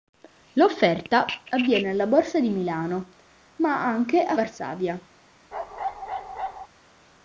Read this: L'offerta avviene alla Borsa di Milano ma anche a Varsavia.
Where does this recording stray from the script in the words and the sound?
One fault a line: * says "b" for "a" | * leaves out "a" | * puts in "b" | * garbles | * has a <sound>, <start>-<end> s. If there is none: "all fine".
* has a bark, 5.5-6.7 s